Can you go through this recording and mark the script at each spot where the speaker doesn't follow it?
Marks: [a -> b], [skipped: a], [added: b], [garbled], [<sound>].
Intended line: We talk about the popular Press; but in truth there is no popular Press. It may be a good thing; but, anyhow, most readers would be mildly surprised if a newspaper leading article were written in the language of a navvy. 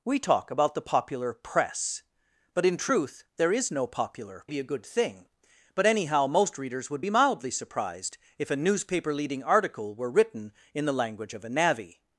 We talk about the popular Press; but in truth there is no popular [skipped: Press. It may] be a good thing; but, anyhow, most readers would be mildly surprised if a newspaper leading article were written in the language of a navvy.